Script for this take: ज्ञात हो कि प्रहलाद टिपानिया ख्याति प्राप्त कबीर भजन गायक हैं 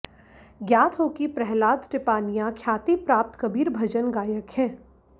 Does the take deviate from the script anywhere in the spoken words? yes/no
no